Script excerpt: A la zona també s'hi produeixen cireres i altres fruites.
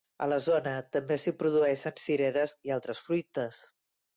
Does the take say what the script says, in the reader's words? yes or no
yes